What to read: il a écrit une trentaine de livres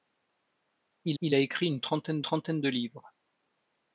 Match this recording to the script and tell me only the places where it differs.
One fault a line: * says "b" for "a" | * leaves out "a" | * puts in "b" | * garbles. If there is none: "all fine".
* puts in "il"
* puts in "trentaine"